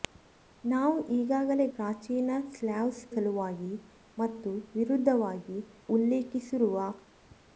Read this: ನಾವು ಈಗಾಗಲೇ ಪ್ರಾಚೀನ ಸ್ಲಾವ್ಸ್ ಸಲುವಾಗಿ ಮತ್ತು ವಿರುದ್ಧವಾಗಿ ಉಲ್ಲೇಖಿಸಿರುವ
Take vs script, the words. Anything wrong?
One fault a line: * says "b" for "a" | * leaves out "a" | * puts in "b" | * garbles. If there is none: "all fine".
all fine